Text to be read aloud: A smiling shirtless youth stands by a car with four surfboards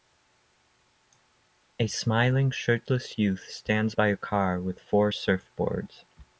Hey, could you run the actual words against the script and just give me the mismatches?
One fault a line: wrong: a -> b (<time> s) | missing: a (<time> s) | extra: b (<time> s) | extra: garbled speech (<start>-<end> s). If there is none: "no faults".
no faults